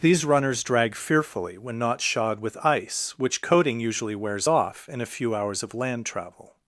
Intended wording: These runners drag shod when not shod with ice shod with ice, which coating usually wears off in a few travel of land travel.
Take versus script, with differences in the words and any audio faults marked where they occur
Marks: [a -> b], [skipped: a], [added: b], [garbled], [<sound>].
These runners drag [shod -> fearfully] when not shod with ice [skipped: shod with ice,] which coating usually wears off in a few [travel -> hours] of land travel.